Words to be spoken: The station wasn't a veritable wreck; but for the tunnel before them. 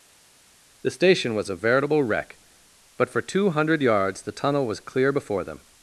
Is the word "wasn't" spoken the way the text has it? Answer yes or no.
no